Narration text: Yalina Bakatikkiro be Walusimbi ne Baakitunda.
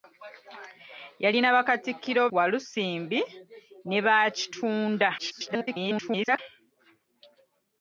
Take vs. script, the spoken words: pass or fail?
fail